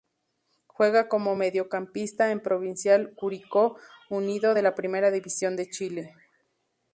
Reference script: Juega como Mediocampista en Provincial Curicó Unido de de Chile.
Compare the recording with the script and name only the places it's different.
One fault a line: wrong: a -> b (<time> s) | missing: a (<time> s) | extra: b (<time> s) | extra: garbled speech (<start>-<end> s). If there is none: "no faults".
extra: la Primera División (4.6 s)